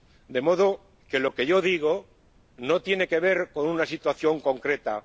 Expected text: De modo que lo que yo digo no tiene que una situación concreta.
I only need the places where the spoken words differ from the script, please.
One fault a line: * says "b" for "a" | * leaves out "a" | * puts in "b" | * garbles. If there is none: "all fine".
* puts in "ver con"